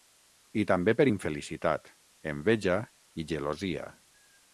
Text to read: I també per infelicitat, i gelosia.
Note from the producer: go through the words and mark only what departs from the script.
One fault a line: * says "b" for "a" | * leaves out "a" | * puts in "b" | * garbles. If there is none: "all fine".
* puts in "enveja"